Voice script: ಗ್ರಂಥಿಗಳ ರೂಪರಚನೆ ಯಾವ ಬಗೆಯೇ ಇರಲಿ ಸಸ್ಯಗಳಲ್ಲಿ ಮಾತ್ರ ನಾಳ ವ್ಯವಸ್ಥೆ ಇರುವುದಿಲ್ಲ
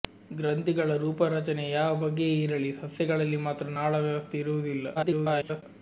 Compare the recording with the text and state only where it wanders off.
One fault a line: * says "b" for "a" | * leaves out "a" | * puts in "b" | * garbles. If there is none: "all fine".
* garbles